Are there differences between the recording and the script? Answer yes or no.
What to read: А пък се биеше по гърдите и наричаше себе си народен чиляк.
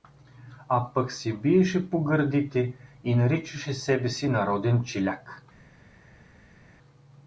no